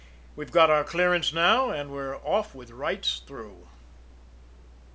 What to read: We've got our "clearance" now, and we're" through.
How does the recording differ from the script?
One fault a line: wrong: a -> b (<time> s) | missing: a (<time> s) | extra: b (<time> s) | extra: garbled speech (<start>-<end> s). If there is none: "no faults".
extra: off with rights (2.2 s)